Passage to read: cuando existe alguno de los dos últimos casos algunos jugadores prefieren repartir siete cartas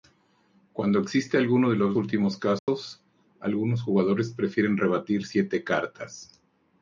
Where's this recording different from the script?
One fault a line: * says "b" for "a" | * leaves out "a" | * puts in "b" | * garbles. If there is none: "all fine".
* leaves out "dos"